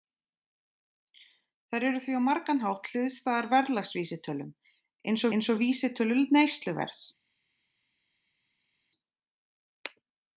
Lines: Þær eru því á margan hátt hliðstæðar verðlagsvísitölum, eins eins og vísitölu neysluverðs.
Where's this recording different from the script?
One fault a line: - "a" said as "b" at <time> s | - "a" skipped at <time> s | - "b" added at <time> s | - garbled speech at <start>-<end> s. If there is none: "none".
none